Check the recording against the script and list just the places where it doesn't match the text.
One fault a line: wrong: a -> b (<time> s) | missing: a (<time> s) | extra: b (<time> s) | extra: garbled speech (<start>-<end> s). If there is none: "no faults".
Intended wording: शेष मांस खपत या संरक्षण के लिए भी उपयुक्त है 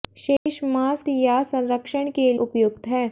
missing: खपत (1.0 s)
missing: लिए भी (2.3 s)